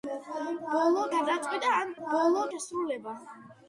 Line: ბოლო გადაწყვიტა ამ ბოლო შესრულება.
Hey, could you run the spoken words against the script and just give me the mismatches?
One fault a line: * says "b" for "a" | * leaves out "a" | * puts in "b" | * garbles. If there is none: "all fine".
all fine